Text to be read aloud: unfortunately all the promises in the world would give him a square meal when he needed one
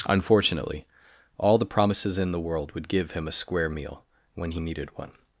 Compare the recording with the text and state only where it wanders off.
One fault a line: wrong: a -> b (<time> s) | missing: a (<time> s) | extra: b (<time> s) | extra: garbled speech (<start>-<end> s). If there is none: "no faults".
no faults